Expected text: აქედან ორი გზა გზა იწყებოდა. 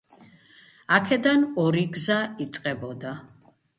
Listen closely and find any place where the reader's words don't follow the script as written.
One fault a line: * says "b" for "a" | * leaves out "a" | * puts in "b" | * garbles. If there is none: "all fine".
* leaves out "გზა"